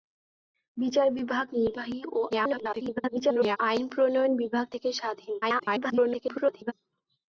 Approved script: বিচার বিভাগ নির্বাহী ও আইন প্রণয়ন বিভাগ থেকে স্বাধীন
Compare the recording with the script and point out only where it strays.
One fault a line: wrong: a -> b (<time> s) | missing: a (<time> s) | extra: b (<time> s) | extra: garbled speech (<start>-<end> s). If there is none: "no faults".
extra: garbled speech (2.3-3.6 s)
extra: garbled speech (5.4-6.7 s)